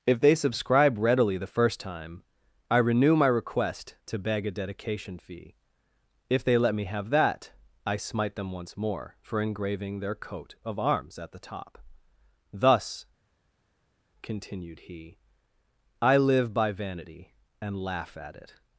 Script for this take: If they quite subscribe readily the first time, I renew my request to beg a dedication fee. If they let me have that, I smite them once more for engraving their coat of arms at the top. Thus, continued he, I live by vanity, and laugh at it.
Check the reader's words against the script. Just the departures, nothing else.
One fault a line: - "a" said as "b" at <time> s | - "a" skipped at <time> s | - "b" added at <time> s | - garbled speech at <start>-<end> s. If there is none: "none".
- "quite" skipped at 0.3 s